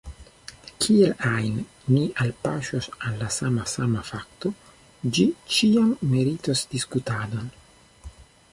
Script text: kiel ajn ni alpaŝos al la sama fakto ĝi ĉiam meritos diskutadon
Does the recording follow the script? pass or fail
fail